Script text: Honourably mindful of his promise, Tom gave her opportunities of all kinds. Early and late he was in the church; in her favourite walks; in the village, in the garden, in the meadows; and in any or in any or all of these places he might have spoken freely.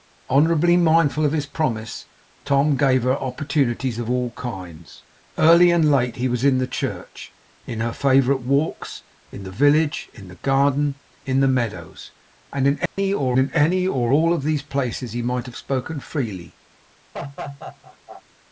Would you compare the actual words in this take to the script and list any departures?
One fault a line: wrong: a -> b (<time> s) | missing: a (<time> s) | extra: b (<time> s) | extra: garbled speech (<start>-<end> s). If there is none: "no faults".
no faults